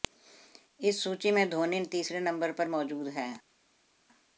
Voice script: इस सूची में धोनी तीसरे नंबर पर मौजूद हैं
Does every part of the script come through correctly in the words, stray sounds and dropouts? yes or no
yes